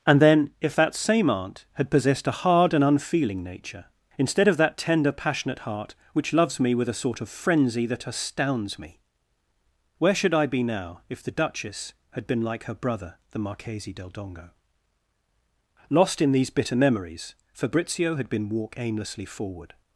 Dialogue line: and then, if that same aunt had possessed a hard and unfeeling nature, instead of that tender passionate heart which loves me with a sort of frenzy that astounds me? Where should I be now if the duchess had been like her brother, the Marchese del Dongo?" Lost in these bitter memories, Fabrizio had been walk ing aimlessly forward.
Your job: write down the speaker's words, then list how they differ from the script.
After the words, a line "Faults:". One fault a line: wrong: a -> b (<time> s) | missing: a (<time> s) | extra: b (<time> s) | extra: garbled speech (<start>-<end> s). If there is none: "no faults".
and then, if that same aunt had possessed a hard and unfeeling nature, instead of that tender passionate heart which loves me with a sort of frenzy that astounds me? Where should I be now if the duchess had been like her brother, the Marchese del Dongo?" Lost in these bitter memories, Fabrizio had been walk aimlessly forward.
Faults:
missing: ing (18.7 s)